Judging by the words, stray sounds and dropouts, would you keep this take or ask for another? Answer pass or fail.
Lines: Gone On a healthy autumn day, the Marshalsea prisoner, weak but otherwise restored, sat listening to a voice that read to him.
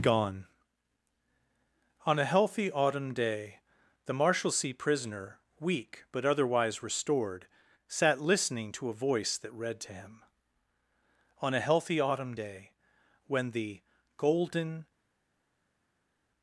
fail